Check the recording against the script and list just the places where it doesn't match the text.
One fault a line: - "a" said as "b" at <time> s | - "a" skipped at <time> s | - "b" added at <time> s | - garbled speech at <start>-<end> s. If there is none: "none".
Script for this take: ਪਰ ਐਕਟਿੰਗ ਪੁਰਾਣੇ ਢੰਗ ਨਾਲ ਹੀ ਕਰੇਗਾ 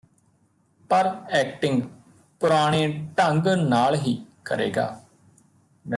none